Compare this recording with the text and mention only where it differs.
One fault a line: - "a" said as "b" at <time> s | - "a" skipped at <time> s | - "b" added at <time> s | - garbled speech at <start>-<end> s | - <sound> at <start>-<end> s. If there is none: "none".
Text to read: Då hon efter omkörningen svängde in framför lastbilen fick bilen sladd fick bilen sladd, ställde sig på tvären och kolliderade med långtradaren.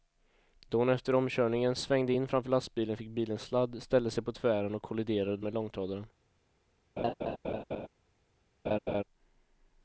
- "fick bilen sladd" skipped at 3.8 s
- laugh at 7.0-7.9 s
- laugh at 8.7-9.0 s